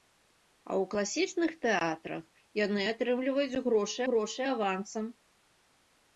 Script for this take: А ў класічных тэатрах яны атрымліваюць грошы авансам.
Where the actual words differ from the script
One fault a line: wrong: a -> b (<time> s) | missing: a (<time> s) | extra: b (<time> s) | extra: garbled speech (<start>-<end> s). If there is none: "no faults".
extra: грошы (4.1 s)